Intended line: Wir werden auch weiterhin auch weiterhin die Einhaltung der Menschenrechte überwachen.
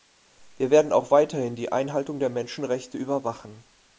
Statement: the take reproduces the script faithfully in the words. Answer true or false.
false